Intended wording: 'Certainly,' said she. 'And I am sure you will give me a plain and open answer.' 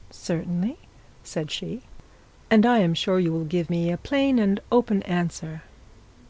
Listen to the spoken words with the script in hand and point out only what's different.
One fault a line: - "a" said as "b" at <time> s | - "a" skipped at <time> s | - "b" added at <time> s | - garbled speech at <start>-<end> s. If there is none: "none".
none